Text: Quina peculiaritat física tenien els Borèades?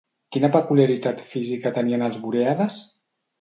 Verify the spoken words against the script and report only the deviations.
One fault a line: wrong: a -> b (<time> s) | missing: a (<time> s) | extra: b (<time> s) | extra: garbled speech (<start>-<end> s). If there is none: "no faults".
no faults